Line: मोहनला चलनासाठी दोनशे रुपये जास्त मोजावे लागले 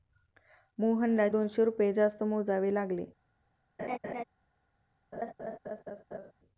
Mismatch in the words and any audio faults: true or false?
true